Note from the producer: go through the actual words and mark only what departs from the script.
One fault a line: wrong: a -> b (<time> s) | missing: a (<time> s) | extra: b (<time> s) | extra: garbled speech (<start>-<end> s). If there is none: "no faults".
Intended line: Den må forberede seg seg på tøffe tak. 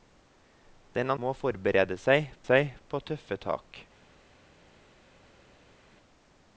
no faults